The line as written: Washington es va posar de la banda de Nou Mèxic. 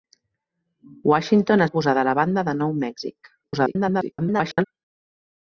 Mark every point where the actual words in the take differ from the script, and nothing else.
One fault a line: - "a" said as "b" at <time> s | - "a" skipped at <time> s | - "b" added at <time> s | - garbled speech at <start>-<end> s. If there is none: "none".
- "es" skipped at 1.6 s
- garbled speech at 3.4-4.6 s